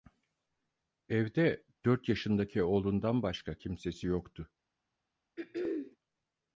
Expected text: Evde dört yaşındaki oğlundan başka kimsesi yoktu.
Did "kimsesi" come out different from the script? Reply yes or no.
no